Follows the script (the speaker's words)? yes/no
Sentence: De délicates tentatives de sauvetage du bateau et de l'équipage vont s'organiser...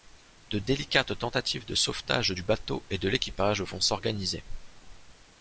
yes